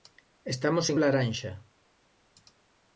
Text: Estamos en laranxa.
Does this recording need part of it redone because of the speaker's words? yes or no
no